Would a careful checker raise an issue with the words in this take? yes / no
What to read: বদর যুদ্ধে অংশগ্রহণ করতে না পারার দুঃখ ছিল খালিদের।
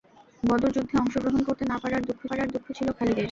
yes